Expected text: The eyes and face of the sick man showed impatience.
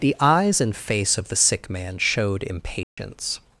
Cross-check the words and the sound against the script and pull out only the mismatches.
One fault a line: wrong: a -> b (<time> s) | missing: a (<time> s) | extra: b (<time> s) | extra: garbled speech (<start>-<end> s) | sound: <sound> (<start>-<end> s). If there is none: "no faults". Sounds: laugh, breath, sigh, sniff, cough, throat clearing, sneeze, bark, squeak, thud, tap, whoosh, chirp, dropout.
sound: dropout (2.8-3.0 s)